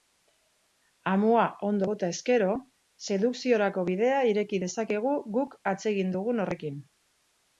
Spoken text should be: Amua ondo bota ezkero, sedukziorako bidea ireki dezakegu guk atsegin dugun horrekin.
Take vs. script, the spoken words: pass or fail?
pass